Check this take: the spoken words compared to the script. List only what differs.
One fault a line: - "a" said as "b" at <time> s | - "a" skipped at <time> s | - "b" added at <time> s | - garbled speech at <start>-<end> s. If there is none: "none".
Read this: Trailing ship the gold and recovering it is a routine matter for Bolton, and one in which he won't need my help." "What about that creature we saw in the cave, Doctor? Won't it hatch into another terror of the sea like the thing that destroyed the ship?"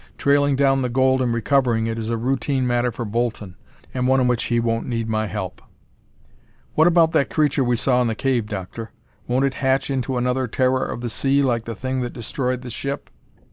- "ship" said as "down" at 0.6 s